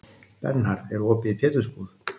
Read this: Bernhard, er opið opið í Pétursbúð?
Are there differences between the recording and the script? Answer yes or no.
yes